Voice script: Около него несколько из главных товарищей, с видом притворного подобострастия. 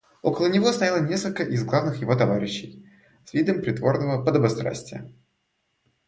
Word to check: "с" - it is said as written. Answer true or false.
true